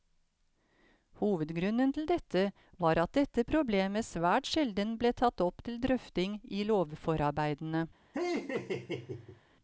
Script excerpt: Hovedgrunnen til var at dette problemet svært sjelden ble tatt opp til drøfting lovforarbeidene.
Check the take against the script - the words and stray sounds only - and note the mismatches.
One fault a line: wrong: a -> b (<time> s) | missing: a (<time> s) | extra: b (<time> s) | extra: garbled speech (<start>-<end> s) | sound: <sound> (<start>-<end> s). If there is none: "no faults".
extra: dette (2.1 s)
extra: i (6.5 s)
sound: laugh (8.1-9.4 s)